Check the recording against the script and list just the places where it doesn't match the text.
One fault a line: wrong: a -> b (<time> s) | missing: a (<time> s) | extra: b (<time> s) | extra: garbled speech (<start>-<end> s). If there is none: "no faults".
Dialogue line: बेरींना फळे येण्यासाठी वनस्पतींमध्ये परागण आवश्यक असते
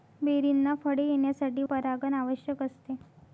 missing: वनस्पतींमध्ये (1.6 s)